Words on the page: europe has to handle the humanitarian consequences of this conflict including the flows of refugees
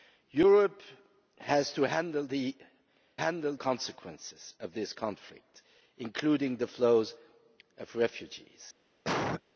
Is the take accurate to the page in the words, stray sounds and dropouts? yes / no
no